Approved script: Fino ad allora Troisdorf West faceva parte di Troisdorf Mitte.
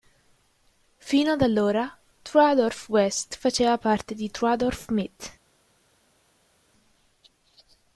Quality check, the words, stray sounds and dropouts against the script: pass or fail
pass